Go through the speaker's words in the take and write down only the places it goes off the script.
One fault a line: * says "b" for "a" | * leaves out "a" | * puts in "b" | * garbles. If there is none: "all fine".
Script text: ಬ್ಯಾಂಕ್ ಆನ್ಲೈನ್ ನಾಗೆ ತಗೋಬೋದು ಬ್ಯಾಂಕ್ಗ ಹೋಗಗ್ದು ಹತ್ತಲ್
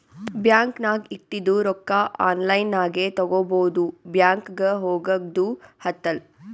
* puts in "ನಾಗ್ ಇಟ್ಟಿದು ರೊಕ್ಕಾ"